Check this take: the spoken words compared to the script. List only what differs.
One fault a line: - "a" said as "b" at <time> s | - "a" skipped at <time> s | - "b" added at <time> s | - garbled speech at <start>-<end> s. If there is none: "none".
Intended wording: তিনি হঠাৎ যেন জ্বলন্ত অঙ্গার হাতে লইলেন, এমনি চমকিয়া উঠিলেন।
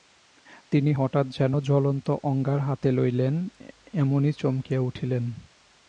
none